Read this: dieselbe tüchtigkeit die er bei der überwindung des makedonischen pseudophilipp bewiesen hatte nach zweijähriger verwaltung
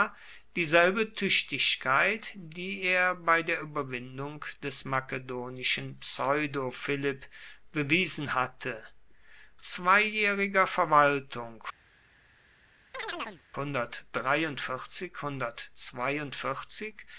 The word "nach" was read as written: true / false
false